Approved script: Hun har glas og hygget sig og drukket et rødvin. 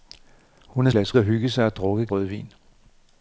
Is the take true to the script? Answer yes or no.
yes